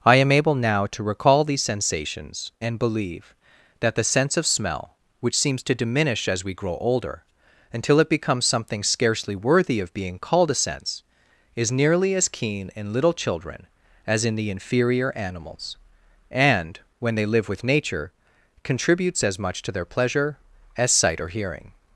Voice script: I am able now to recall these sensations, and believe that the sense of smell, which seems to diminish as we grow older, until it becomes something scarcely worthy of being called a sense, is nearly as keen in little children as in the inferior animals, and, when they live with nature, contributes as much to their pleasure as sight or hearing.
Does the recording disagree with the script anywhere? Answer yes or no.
no